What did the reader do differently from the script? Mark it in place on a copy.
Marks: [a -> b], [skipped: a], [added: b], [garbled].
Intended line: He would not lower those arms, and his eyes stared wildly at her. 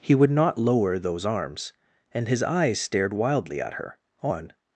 He would not lower those arms, and his eyes stared wildly at her. [added: On]